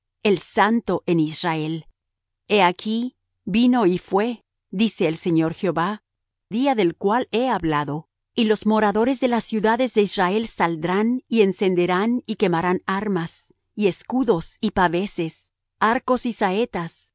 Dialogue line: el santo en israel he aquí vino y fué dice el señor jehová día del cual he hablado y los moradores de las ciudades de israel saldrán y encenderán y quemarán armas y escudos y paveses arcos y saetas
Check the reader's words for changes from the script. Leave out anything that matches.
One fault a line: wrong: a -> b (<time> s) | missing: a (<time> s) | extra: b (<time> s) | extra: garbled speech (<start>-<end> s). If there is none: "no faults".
no faults